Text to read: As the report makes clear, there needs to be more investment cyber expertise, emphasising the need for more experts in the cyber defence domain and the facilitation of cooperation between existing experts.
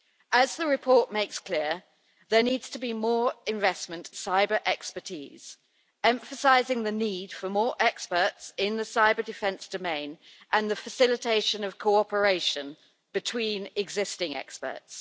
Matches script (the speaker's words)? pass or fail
pass